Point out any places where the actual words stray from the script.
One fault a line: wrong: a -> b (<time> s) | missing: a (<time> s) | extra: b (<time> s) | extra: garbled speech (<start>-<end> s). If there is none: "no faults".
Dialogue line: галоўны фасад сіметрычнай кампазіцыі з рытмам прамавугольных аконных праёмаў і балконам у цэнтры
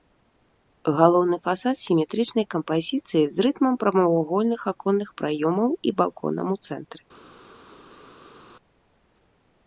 no faults